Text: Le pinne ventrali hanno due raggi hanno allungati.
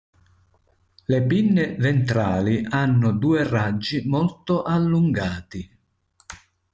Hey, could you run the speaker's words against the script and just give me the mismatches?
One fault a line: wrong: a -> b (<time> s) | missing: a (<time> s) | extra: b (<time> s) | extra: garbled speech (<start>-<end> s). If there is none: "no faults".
wrong: hanno -> molto (4.1 s)